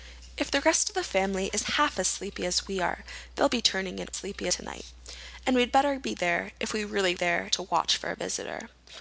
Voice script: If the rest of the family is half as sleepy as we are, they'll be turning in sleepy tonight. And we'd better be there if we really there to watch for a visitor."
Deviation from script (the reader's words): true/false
false